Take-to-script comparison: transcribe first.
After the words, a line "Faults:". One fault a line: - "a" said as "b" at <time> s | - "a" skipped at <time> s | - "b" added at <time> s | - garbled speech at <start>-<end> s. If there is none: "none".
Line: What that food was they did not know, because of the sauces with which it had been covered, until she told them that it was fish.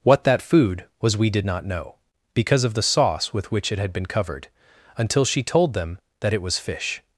What that food was we did not know, because of the sauce with which it had been covered, until she told them that it was fish.
Faults:
- "they" said as "we" at 1.1 s
- "sauces" said as "sauce" at 2.8 s